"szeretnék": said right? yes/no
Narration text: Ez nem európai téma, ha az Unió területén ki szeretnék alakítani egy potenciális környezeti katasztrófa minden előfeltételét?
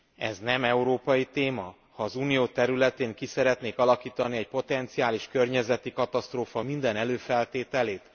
yes